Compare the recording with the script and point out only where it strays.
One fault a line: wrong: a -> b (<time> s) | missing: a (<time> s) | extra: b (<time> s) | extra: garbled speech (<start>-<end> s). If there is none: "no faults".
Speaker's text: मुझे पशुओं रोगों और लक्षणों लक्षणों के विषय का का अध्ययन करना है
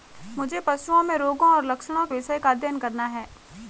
extra: में (1.0 s)
missing: लक्षणों (2.0 s)
missing: का (2.5 s)